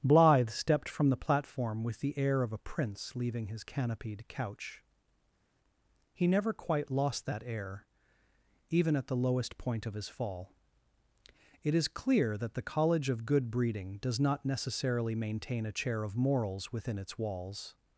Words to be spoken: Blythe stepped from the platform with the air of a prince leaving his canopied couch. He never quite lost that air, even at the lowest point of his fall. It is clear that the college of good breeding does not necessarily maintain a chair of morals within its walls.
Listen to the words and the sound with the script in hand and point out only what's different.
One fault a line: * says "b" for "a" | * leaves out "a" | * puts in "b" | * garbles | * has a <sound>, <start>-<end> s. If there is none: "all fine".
all fine